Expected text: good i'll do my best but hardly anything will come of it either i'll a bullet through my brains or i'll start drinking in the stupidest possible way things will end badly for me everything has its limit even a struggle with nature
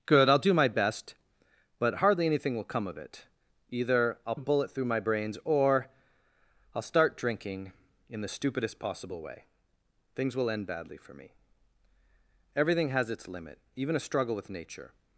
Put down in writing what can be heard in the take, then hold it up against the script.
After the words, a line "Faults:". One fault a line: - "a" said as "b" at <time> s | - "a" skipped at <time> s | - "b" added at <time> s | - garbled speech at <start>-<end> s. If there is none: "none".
good i'll do my best but hardly anything will come of it either i'll a bullet through my brains or i'll start drinking in the stupidest possible way things will end badly for me everything has its limit even a struggle with nature
Faults:
none